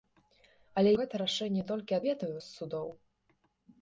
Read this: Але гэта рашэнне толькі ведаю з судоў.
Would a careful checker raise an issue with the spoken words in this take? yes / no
no